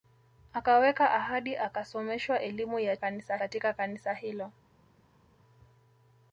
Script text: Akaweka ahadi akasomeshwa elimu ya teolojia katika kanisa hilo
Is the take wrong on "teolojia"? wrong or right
wrong